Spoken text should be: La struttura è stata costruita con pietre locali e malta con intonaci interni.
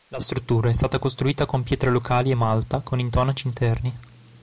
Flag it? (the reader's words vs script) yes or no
no